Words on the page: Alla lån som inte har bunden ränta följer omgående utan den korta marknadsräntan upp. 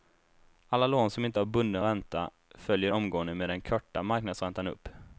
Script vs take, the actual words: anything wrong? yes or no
yes